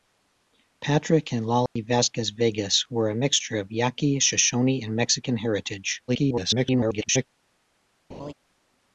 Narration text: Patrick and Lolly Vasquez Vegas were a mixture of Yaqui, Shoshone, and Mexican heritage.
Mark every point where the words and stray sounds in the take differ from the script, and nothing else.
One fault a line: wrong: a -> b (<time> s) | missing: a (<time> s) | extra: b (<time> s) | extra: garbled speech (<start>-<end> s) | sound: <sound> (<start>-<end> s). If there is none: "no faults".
sound: dropout (1.7-1.8 s)
extra: garbled speech (6.1-7.2 s)
sound: laugh (8.1-8.3 s)